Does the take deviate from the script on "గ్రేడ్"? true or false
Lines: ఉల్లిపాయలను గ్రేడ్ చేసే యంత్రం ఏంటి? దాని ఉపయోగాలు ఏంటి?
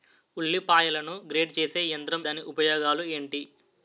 false